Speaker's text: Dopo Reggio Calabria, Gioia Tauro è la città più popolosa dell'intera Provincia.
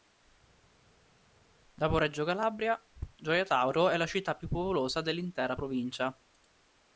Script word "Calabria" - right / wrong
right